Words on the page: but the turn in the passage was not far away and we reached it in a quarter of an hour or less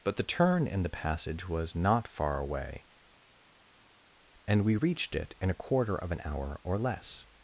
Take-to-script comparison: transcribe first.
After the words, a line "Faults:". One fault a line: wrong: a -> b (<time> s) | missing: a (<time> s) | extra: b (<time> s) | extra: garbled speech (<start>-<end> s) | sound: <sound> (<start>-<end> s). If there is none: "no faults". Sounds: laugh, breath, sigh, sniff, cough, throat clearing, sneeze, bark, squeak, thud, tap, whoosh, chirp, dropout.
but the turn in the passage was not far away and we reached it in a quarter of an hour or less
Faults:
no faults